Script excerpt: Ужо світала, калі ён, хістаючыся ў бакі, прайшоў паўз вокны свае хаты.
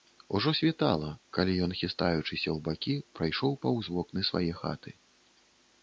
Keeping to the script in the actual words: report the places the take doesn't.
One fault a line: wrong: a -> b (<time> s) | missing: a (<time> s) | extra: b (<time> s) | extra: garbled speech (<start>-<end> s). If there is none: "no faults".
no faults